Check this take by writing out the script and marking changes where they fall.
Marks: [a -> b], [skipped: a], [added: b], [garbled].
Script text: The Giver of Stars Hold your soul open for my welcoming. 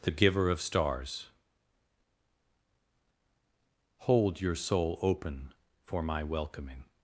The Giver of Stars Hold your soul open for my welcoming.